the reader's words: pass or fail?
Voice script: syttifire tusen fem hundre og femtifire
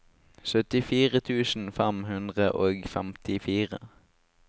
pass